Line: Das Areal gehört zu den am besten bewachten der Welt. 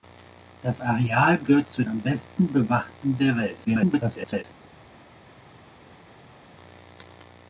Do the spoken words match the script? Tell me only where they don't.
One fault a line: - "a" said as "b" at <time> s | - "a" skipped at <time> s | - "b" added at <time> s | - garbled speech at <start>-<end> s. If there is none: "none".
- "den" skipped at 1.8 s
- garbled speech at 3.6-4.4 s